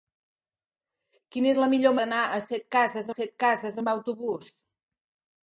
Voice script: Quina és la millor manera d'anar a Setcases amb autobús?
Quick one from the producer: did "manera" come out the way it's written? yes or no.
no